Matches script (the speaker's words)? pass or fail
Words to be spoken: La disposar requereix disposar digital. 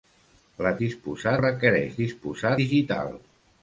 pass